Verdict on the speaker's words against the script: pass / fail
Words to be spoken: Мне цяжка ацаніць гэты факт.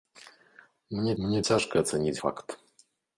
fail